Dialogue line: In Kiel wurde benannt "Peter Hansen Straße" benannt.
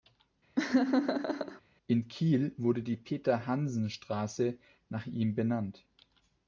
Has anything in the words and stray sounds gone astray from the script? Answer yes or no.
yes